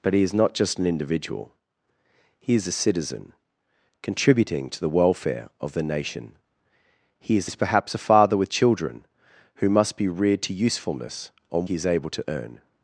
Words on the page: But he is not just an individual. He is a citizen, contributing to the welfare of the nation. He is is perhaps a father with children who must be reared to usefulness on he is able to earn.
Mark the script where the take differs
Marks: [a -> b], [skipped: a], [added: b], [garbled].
But he is not just an individual. He is a citizen, contributing to the welfare of the nation. He is is perhaps a father with children who must be reared to usefulness on he is able to earn.